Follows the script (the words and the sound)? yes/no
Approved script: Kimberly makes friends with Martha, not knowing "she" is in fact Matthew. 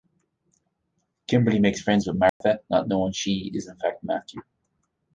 no